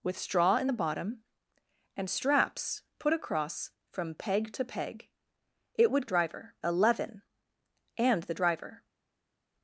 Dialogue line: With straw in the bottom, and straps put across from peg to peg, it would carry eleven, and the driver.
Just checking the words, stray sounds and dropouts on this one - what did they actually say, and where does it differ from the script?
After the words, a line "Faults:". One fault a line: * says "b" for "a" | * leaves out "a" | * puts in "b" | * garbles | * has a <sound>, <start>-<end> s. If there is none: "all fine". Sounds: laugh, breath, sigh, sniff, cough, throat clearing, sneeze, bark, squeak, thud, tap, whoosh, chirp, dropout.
With straw in the bottom, and straps put across from peg to peg, it would driver eleven, and the driver.
Faults:
* says "driver" for "carry"